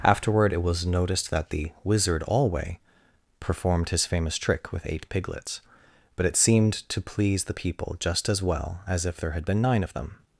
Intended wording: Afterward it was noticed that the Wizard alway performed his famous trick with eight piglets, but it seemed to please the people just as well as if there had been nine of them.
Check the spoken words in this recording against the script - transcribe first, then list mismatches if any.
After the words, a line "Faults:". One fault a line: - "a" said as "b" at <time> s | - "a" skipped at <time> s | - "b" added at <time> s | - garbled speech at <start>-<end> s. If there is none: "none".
Afterward it was noticed that the Wizard alway performed his famous trick with eight piglets, but it seemed to please the people just as well as if there had been nine of them.
Faults:
none